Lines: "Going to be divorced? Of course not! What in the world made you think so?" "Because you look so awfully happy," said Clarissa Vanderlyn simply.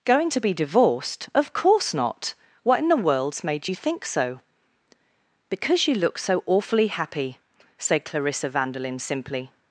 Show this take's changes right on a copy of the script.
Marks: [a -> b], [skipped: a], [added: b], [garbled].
"Going to be divorced? Of course not! What in the [world -> worlds] made you think so?" "Because you look so awfully happy," said Clarissa Vanderlyn simply.